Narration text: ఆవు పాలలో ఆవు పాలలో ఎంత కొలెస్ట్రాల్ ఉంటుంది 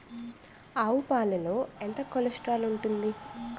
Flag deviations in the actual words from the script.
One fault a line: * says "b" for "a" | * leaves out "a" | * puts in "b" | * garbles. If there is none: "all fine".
* leaves out "ఆవు పాలలో"